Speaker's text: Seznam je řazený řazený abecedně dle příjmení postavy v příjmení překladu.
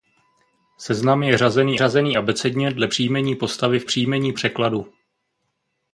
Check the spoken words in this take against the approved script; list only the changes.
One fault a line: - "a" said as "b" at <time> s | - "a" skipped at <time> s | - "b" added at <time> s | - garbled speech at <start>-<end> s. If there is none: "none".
none